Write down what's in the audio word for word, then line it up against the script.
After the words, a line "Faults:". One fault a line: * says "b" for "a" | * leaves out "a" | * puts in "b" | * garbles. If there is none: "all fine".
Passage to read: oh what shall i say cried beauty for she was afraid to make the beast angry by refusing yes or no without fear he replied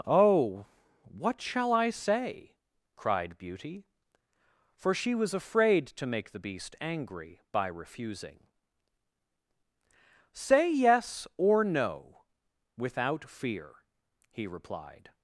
oh what shall i say cried beauty for she was afraid to make the beast angry by refusing say yes or no without fear he replied
Faults:
* puts in "say"